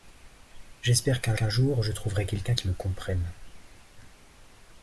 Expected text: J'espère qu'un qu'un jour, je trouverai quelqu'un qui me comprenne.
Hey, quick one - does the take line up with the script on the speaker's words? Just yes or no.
yes